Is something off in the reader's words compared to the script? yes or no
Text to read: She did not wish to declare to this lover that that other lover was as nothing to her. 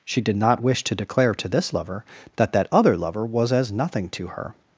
no